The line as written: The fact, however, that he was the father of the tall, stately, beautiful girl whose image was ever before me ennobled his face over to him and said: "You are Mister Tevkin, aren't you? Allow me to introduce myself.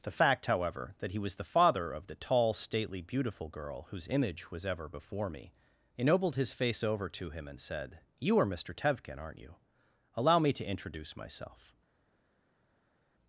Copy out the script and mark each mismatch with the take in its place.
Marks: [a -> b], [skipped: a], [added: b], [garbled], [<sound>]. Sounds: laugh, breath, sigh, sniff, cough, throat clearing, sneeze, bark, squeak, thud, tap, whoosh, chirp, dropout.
The fact, however, that he was the father of the tall, stately, beautiful girl whose image was ever before me ennobled his face over to him and said: "You are Mister Tevkin, aren't you? Allow me to introduce myself.